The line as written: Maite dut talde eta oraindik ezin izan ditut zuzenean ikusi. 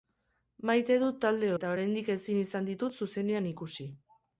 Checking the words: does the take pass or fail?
pass